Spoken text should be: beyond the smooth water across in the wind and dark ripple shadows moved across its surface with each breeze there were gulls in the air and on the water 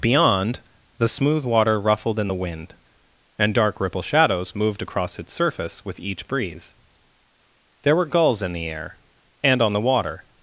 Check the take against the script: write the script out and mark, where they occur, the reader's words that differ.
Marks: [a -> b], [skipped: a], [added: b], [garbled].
beyond the smooth water [across -> ruffled] in the wind and dark ripple shadows moved across its surface with each breeze there were gulls in the air and on the water